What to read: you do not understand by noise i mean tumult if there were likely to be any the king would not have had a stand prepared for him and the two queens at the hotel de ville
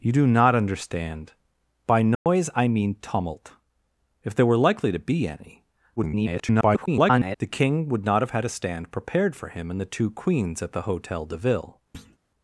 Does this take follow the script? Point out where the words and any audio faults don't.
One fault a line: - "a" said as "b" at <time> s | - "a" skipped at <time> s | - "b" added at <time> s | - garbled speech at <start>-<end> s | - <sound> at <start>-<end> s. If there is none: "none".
- dropout at 2.1-2.3 s
- garbled speech at 6.0-7.4 s
- thud at 11.9-12.2 s